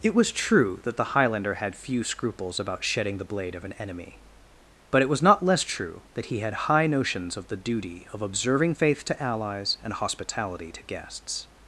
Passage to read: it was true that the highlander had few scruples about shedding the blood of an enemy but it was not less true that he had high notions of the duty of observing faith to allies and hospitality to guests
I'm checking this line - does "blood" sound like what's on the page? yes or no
no